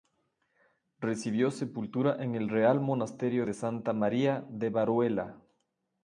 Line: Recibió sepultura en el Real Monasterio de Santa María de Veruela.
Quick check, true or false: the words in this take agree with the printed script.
true